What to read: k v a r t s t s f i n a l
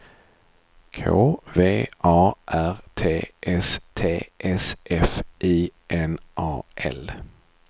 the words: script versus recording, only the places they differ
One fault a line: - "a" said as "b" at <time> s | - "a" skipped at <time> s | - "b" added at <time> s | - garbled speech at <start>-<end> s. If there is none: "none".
none